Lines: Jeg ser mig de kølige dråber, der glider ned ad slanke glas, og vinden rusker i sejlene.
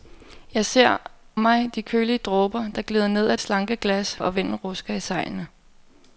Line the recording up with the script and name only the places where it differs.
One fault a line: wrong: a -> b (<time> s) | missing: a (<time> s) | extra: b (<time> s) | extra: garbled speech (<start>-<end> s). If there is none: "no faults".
no faults